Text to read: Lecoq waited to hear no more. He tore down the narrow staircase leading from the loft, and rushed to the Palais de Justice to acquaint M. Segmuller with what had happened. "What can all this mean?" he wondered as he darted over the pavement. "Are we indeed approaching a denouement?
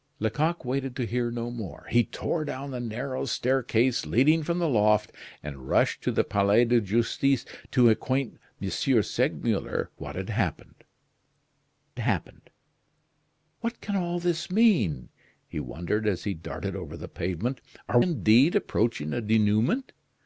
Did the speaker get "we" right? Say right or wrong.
wrong